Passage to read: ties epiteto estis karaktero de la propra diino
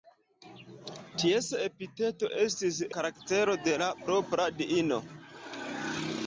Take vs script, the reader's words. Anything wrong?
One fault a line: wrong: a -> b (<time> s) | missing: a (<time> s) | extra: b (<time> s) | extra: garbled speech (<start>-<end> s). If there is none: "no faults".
no faults